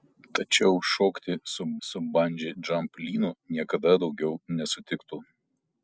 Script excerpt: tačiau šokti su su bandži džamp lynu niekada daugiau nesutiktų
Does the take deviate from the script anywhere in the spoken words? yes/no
no